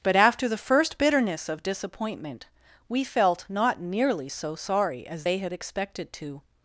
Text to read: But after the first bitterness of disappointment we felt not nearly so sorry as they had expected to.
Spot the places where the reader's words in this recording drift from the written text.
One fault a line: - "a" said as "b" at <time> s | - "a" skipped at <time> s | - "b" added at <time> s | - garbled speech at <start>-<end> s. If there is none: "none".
none